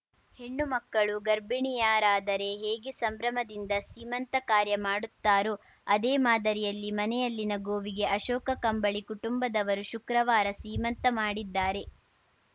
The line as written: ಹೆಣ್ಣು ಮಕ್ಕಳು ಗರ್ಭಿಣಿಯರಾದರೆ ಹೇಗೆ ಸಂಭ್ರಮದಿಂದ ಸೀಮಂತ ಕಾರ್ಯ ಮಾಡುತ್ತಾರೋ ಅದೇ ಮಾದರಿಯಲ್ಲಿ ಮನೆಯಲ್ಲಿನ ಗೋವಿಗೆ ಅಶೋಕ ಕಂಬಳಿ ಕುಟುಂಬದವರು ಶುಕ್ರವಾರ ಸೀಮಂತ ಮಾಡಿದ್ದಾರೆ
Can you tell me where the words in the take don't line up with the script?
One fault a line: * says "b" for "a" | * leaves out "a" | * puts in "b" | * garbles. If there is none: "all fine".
all fine